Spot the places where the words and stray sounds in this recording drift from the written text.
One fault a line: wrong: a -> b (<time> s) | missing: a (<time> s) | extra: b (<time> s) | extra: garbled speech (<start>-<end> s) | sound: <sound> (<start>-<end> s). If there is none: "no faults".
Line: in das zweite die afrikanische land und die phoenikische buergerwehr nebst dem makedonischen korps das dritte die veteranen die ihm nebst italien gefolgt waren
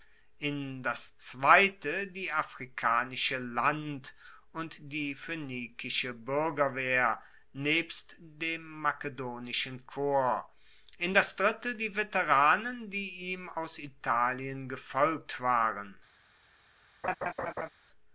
extra: in (11.0 s)
wrong: nebst -> aus (13.5 s)
sound: laugh (17.0-17.7 s)